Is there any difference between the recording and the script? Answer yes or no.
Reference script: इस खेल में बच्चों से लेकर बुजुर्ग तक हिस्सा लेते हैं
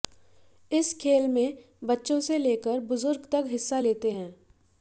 no